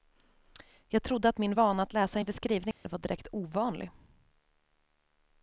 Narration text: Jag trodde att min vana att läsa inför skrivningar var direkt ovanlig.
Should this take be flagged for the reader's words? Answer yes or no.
no